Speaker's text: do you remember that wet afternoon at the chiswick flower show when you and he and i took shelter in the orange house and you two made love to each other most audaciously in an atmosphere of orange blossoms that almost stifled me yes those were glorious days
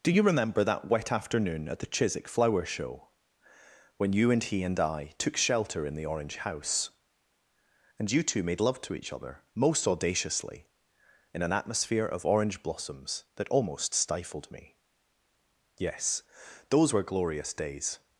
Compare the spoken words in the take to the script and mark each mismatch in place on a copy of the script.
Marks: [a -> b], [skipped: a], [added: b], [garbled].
do you remember that wet afternoon at the chiswick flower show when you and he and i took shelter in the orange house and you two made love to each other most audaciously in an atmosphere of orange blossoms that almost stifled me yes those were glorious days